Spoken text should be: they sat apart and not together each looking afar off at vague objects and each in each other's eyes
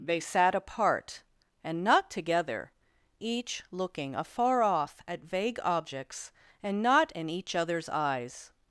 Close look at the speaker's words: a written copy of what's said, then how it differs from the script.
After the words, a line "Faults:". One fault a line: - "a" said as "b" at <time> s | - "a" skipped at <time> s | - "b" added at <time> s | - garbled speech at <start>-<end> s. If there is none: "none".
they sat apart and not together each looking afar off at vague objects and not in each other's eyes
Faults:
- "each" said as "not" at 6.8 s